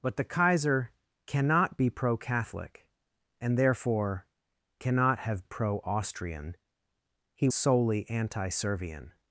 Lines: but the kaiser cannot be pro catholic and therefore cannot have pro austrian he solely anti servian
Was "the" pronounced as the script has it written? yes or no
yes